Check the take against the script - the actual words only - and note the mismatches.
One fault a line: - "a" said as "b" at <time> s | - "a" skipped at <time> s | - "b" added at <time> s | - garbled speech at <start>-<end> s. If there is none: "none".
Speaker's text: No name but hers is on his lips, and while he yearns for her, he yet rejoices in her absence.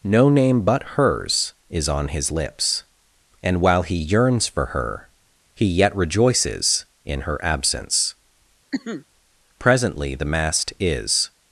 - "Presently the mast is" added at 9.6 s